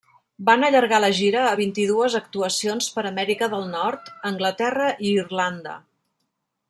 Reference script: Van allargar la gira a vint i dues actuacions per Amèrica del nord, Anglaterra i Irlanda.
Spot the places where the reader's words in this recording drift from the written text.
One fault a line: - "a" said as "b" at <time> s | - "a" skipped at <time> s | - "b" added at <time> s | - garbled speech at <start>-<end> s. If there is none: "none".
none